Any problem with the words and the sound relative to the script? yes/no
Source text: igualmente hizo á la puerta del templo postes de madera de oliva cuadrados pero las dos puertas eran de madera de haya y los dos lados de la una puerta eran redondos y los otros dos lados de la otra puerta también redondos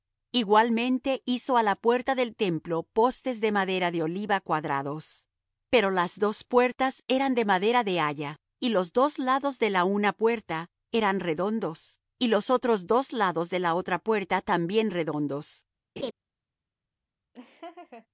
yes